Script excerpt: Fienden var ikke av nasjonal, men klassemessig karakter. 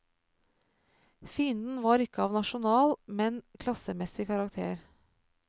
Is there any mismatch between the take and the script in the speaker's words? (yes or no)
no